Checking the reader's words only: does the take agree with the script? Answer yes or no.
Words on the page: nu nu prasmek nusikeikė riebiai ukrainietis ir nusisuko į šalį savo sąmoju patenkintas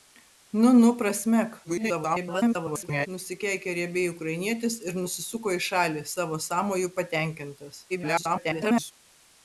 no